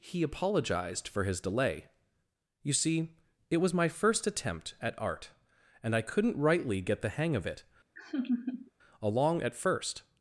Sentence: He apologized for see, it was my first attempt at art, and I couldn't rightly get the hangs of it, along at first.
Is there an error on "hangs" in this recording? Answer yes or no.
yes